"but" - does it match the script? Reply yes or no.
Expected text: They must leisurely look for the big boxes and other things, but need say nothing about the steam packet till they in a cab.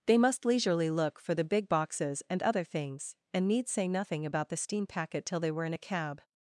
no